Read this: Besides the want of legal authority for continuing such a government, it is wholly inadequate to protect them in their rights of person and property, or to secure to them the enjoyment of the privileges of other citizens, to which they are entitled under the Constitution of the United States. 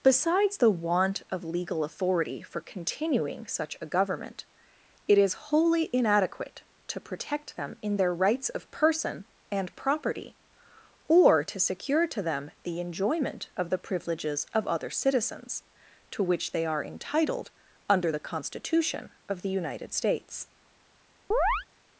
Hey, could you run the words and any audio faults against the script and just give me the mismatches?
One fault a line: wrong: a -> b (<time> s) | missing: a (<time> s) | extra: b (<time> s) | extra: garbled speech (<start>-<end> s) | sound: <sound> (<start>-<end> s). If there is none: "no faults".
sound: chirp (21.3-21.7 s)